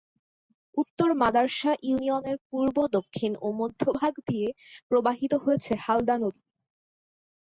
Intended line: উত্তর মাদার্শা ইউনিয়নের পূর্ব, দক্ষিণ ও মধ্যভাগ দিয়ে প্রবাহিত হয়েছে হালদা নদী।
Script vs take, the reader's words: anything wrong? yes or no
no